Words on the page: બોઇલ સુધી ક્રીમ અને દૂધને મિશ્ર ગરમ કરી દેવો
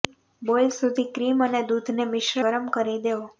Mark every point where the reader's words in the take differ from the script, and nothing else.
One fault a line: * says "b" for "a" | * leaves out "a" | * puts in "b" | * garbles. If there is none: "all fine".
all fine